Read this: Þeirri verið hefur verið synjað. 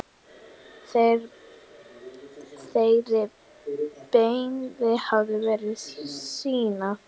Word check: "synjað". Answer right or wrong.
right